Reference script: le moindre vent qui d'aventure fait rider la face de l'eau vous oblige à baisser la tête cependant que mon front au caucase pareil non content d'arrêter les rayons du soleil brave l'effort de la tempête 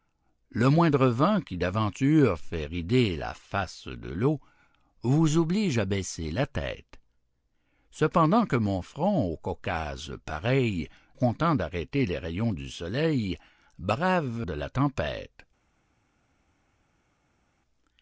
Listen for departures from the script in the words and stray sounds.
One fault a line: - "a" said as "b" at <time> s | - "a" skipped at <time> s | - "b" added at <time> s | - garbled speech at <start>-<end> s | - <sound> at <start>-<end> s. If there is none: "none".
- "non" skipped at 10.9 s
- "l'effort" skipped at 14.5 s